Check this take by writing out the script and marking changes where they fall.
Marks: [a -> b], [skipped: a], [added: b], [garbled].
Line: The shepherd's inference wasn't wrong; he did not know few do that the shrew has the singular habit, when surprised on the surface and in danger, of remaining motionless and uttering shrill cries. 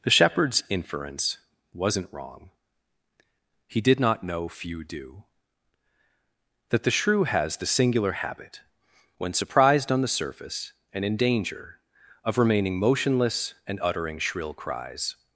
The shepherd's inference wasn't wrong; he did not know few do that the shrew has the singular habit, when surprised on the surface and in danger, of remaining motionless and uttering shrill cries.